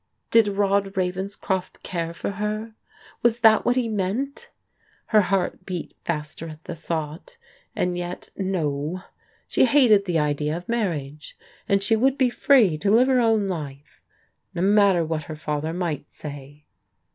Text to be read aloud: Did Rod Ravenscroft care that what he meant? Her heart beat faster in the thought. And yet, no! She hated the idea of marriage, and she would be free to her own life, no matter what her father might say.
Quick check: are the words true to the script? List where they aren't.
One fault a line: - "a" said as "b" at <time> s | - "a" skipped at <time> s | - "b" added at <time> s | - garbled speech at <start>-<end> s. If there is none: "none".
- "for her Was" added at 2.1 s
- "in" said as "at" at 6.5 s
- "live" added at 12.9 s